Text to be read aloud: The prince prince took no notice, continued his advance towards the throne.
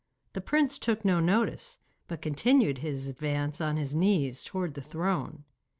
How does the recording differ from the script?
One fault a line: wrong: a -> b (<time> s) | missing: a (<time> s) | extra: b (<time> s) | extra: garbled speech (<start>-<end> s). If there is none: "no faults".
missing: prince (0.8 s)
extra: but (2.1 s)
extra: on his knees (3.6 s)